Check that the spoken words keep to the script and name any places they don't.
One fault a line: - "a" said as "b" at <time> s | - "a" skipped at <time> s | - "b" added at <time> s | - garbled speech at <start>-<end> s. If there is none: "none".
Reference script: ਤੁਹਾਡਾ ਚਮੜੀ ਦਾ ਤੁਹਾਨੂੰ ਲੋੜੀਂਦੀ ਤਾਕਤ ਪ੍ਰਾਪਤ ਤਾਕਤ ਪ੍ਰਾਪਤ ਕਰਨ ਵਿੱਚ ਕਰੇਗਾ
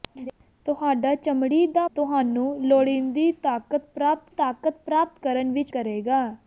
none